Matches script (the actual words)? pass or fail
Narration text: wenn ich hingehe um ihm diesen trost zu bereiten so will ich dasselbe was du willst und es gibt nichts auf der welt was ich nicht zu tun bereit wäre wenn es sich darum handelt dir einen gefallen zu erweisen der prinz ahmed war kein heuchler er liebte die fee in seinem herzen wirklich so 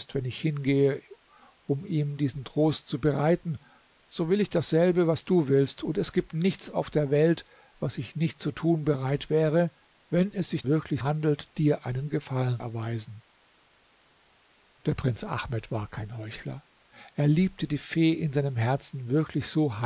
fail